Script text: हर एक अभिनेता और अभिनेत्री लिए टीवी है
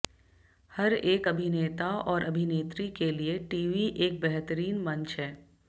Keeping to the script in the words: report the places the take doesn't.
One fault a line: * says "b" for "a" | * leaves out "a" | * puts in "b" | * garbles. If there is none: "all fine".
* puts in "के"
* puts in "एक बेहतरीन मंच"